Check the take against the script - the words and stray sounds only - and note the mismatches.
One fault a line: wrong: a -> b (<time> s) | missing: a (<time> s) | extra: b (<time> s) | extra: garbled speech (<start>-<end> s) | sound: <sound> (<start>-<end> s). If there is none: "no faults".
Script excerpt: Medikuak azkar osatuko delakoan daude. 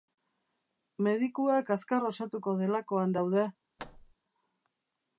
sound: thud (3.8-4.1 s)